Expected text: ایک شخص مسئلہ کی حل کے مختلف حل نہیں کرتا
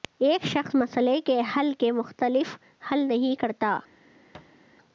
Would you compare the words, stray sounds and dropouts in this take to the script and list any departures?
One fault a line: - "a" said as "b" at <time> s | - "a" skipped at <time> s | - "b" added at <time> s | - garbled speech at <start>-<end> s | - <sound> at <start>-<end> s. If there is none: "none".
- "کی" said as "کے" at 1.3 s
- thud at 4.3-4.6 s